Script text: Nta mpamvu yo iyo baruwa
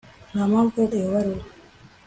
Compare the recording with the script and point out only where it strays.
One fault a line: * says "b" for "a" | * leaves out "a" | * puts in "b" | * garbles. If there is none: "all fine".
all fine